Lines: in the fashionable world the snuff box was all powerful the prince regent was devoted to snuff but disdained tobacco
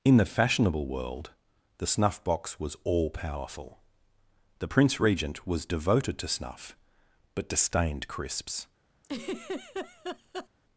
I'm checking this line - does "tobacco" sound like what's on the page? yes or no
no